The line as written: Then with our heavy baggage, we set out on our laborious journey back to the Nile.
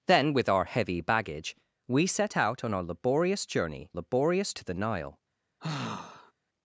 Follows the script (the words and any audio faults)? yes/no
no